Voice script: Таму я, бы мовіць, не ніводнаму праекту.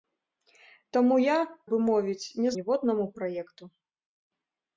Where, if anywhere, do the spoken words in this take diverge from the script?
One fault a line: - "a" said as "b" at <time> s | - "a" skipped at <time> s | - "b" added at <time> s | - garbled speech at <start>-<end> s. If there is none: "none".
none